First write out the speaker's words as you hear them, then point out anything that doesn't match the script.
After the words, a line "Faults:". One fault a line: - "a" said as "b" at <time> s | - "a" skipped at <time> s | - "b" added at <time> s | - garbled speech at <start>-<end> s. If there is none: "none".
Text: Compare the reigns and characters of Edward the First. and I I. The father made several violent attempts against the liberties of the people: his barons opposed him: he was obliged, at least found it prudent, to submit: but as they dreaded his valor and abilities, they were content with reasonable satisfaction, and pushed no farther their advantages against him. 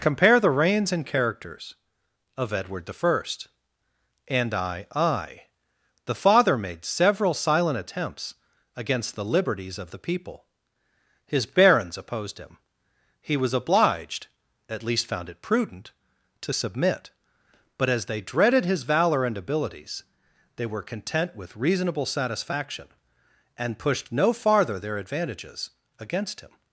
Compare the reigns and characters of Edward the First. and I I. The father made several silent attempts against the liberties of the people: his barons opposed him: he was obliged, at least found it prudent, to submit: but as they dreaded his valor and abilities, they were content with reasonable satisfaction, and pushed no farther their advantages against him.
Faults:
- "violent" said as "silent" at 7.3 s